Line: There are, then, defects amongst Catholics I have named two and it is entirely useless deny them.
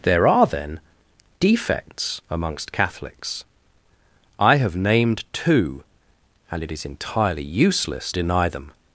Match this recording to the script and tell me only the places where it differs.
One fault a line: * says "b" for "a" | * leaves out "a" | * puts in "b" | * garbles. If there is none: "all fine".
all fine